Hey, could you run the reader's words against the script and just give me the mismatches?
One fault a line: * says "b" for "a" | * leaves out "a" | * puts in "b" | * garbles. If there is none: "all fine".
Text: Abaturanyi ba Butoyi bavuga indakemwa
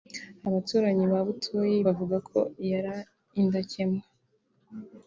* puts in "ko yari"